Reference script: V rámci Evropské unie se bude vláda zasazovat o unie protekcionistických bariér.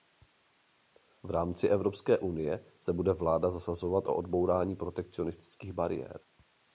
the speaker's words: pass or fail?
fail